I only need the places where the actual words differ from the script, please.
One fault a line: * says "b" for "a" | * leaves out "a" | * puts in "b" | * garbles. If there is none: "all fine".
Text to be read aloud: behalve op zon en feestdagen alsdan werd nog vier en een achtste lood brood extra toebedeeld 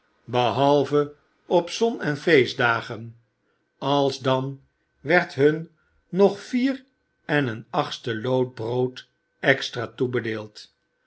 * puts in "hun"